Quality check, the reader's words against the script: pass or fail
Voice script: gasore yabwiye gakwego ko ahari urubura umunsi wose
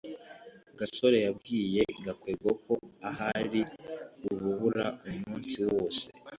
pass